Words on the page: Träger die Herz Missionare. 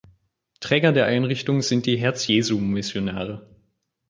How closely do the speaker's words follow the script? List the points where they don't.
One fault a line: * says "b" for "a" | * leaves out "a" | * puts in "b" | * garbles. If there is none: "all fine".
* puts in "der Einrichtung sind"
* puts in "Jesu"